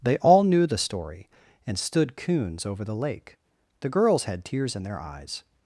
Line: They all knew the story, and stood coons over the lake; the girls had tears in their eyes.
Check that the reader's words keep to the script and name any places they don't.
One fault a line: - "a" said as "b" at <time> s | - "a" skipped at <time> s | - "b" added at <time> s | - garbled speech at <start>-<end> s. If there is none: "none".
none